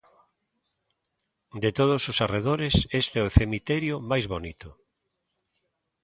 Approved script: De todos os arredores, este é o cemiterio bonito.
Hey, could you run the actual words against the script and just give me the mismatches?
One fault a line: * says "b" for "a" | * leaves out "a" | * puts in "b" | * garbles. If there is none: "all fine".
* puts in "máis"